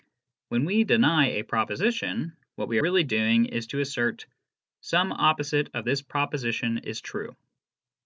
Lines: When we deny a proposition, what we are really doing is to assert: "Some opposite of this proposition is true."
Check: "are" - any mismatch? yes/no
yes